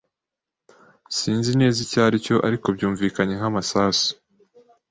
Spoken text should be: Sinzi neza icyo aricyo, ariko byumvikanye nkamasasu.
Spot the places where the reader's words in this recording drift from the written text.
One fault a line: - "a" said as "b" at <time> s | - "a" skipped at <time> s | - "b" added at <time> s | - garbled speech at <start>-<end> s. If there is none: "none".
none